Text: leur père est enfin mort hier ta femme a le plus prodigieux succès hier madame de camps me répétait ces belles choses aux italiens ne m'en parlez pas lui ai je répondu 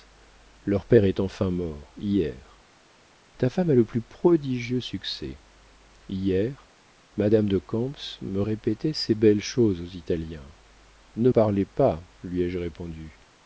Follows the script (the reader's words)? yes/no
no